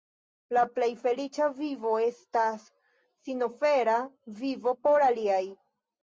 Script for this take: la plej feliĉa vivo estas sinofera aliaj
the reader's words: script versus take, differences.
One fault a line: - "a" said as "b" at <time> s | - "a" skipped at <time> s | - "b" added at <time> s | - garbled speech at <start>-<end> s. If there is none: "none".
- "vivo por" added at 4.4 s